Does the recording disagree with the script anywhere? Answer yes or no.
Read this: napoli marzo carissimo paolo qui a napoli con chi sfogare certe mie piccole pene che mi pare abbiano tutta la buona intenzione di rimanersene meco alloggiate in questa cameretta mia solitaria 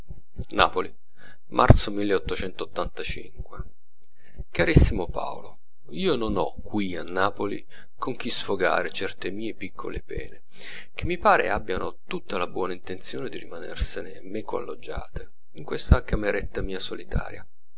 yes